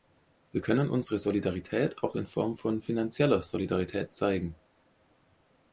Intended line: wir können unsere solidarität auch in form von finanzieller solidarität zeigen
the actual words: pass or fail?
pass